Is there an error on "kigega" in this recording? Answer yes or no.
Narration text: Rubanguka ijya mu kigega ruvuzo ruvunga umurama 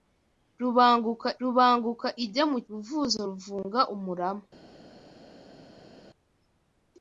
yes